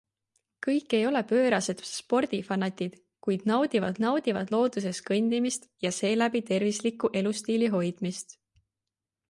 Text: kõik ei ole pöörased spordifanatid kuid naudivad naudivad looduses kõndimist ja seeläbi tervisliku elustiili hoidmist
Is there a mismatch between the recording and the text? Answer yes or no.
no